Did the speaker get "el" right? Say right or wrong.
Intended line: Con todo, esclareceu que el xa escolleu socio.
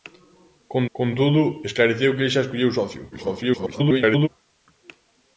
right